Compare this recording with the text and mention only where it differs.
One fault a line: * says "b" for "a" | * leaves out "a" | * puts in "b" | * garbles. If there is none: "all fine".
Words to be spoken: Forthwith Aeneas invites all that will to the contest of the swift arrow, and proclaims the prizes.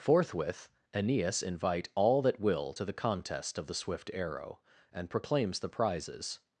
* says "invite" for "invites"